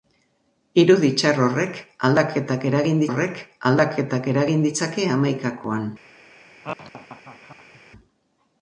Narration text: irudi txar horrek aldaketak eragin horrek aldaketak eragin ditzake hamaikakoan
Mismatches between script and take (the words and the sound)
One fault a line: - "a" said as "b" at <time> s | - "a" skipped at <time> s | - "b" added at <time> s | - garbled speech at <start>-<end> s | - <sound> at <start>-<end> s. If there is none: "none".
- laugh at 6.6-7.8 s